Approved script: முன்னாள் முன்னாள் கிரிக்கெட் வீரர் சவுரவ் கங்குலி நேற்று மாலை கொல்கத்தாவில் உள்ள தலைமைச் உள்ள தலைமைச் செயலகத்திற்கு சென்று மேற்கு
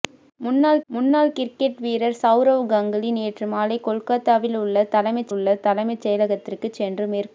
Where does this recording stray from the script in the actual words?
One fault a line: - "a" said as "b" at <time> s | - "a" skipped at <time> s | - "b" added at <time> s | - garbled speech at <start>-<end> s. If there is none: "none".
none